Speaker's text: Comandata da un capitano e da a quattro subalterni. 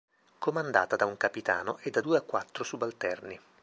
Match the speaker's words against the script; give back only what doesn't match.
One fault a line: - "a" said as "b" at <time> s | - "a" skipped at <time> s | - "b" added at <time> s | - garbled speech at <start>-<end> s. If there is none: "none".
- "due" added at 2.0 s